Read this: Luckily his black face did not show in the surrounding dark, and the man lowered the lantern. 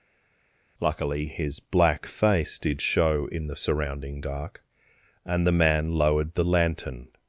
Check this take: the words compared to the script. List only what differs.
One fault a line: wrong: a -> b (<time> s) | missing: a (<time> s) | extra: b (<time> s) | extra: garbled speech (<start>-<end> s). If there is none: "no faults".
missing: not (2.8 s)